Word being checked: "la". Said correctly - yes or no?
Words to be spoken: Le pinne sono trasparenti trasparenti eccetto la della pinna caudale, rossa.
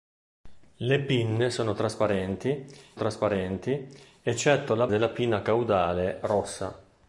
yes